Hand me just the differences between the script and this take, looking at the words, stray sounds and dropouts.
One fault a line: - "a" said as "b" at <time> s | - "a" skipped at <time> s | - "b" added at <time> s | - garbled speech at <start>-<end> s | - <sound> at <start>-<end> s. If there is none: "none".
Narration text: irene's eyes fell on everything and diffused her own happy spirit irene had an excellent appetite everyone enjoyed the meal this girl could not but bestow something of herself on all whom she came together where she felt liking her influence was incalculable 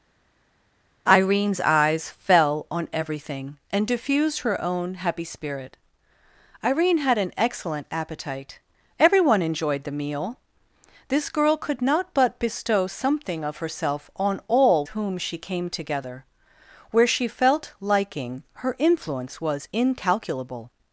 none